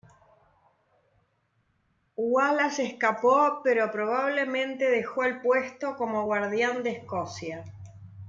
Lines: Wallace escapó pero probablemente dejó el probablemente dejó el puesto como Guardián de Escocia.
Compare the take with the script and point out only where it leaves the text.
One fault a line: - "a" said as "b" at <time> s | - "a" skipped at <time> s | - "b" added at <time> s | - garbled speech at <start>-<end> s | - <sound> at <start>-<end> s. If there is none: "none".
- "probablemente dejó el" skipped at 5.4 s